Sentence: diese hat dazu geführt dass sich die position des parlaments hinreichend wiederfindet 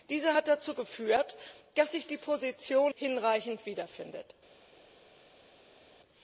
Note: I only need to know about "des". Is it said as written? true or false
false